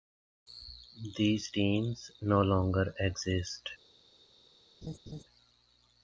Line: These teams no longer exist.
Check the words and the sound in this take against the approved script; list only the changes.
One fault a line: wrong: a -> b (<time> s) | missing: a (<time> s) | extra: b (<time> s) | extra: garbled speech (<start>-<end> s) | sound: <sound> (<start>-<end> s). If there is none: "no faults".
sound: laugh (4.8-5.2 s)